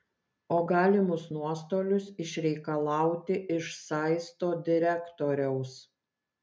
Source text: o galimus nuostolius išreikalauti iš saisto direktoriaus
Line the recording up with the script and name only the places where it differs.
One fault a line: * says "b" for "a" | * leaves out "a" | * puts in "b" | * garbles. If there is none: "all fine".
all fine